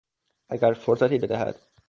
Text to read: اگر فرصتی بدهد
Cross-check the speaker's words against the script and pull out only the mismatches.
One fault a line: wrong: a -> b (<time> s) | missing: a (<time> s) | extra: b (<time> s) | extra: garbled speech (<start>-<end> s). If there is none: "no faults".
no faults